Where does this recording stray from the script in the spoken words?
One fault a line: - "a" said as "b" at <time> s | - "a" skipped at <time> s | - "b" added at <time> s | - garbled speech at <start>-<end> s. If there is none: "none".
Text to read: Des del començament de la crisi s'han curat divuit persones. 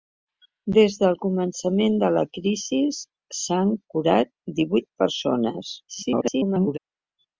- garbled speech at 5.9-6.8 s